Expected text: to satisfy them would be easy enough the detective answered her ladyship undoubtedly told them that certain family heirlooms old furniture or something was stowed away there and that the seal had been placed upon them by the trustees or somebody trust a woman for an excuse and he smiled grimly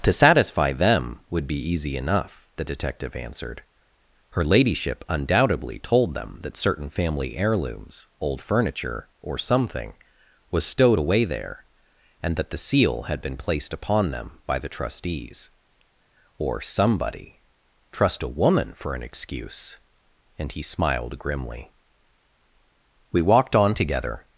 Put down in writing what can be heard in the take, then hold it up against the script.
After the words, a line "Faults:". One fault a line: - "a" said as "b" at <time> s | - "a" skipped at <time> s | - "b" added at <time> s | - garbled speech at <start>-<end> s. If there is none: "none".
to satisfy them would be easy enough the detective answered her ladyship undoubtedly told them that certain family heirlooms old furniture or something was stowed away there and that the seal had been placed upon them by the trustees or somebody trust a woman for an excuse and he smiled grimly we walked on together
Faults:
- "we walked on together" added at 23.1 s